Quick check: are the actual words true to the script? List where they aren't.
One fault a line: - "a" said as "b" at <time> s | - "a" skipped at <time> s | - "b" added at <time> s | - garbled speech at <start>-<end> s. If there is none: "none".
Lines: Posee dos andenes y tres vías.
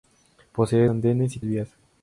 - "dos" skipped at 0.9 s
- "tres" skipped at 1.4 s